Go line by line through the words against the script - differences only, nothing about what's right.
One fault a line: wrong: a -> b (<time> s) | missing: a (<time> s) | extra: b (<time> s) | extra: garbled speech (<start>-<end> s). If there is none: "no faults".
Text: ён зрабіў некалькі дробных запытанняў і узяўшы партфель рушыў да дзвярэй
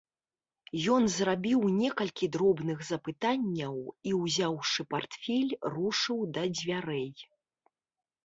no faults